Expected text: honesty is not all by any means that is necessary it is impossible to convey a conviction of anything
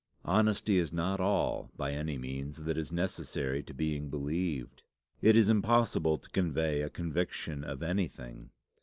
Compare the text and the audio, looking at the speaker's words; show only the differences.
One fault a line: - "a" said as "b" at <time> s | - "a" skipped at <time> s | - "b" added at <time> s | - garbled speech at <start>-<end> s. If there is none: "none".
- "to being believed" added at 3.6 s